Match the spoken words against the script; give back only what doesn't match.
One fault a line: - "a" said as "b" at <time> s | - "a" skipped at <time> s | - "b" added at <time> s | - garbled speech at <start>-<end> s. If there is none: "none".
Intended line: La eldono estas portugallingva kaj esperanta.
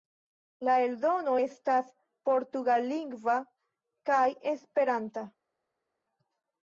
none